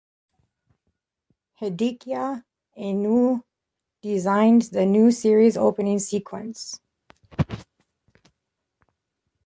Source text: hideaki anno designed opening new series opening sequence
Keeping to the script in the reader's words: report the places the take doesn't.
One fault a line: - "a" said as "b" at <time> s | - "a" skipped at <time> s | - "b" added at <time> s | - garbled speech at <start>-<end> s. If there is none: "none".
- "opening" said as "the" at 4.6 s